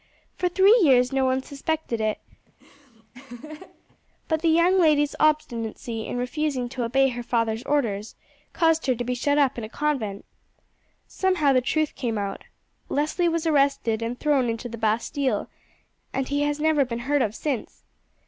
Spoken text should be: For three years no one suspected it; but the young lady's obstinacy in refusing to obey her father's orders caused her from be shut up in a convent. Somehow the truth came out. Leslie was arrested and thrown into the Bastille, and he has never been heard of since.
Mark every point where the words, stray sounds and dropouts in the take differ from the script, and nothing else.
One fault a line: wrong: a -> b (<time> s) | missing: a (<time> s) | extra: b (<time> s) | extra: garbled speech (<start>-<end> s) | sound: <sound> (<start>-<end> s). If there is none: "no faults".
sound: laugh (2.5-4.0 s)
wrong: from -> to (8.9 s)